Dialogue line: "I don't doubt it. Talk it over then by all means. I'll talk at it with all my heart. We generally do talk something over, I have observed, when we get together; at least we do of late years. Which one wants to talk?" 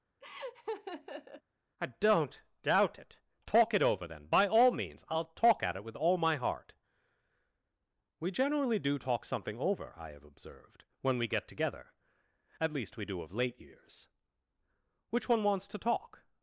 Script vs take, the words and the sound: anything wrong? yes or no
yes